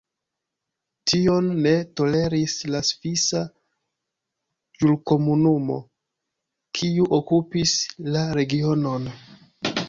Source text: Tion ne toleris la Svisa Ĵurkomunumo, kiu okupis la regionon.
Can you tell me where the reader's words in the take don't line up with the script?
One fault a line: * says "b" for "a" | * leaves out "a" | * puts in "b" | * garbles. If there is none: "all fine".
all fine